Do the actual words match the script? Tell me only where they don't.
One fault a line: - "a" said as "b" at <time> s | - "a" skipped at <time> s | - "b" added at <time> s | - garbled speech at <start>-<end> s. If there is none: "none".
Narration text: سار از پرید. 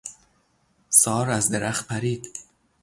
- "درخت" added at 1.5 s